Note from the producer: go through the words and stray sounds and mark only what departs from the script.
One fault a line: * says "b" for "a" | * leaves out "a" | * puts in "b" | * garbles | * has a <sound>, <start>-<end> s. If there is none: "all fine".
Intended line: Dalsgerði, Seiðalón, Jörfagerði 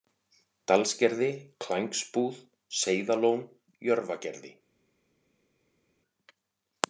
* puts in "Klængsbúð"